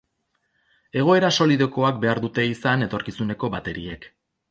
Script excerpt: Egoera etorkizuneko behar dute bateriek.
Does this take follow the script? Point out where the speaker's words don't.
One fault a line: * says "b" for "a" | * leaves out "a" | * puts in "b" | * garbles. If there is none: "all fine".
* says "solidokoak" for "etorkizuneko"
* puts in "izan etorkizuneko"